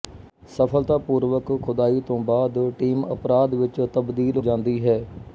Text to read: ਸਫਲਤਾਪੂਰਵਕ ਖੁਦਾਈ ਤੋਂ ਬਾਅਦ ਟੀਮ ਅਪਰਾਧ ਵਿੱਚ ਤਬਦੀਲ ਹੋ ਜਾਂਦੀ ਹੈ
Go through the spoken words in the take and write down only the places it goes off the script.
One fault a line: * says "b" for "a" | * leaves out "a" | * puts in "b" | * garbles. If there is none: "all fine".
* leaves out "ਹੋ"